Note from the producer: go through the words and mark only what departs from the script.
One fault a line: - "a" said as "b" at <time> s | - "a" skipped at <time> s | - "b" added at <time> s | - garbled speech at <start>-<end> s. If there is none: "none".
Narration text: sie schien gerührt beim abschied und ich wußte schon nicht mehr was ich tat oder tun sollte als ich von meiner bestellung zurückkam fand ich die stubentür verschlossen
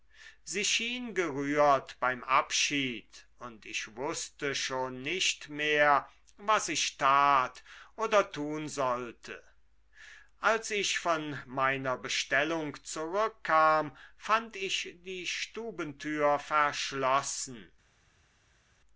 none